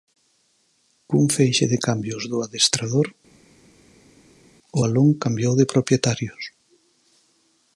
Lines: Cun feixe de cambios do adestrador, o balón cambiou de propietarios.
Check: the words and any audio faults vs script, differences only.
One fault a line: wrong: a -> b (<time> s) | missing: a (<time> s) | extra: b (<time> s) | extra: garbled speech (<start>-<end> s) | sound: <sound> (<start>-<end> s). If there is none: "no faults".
no faults